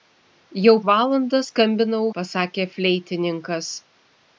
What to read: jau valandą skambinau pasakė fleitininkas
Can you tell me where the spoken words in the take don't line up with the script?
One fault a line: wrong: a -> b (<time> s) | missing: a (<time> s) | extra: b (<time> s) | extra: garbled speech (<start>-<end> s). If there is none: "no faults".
no faults